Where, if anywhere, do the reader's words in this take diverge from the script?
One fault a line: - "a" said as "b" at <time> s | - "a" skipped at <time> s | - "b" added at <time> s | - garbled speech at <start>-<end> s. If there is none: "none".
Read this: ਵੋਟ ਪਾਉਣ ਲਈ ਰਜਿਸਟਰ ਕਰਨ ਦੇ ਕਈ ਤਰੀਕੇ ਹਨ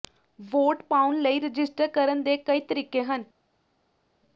none